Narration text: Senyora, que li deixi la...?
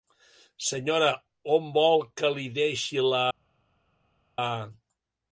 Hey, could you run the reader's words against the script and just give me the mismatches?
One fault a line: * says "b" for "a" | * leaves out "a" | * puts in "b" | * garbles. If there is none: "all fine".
* puts in "on vol"